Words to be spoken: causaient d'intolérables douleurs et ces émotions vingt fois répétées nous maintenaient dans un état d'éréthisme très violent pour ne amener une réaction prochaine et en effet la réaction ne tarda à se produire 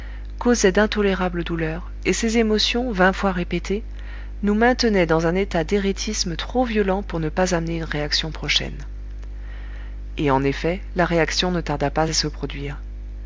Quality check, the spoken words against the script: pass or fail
fail